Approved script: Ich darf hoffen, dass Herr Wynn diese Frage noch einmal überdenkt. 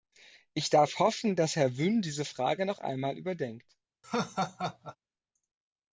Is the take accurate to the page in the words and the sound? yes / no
no